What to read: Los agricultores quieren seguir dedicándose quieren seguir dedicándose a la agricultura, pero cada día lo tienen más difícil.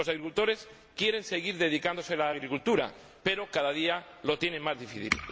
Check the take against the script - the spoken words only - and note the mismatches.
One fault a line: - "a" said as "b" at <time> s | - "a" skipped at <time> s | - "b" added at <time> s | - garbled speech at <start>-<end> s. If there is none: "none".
- "quieren seguir dedicándose" skipped at 2.1 s